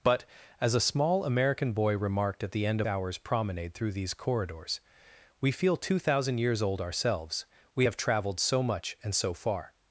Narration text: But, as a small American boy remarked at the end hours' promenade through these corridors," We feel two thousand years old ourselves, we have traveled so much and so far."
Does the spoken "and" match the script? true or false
true